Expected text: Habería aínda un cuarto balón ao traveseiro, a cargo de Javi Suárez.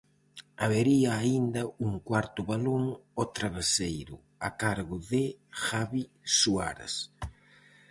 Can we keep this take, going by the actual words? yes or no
yes